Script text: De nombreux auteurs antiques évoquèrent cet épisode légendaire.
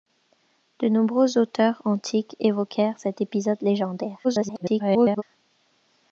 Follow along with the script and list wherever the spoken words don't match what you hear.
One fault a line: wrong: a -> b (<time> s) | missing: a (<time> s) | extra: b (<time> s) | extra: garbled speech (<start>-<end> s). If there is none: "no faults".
extra: garbled speech (4.2-5.2 s)